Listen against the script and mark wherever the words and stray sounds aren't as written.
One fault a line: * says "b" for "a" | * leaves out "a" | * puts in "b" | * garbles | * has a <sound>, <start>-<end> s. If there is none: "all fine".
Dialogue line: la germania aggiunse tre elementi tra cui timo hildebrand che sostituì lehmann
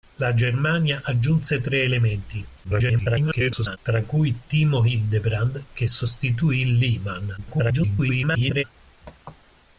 * garbles
* garbles